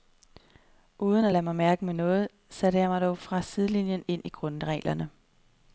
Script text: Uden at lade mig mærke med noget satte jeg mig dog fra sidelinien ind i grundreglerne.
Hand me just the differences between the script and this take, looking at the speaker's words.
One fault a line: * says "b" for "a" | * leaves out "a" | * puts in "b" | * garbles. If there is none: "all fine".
all fine